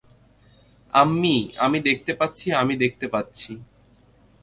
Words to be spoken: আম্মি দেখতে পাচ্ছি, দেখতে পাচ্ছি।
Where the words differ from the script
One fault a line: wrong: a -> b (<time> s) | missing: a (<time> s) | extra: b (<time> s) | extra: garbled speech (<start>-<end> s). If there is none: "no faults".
extra: আমি (1.6 s)
extra: আমি (2.5 s)